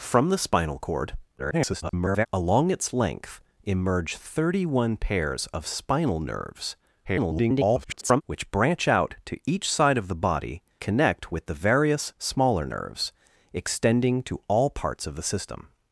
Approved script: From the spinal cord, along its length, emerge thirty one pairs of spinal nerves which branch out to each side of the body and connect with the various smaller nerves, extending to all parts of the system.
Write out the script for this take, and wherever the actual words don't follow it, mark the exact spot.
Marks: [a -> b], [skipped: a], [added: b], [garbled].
From the spinal cord, [garbled] along its length, emerge thirty one pairs of spinal nerves [garbled] which branch out to each side of the body [skipped: and] connect with the various smaller nerves, extending to all parts of the system.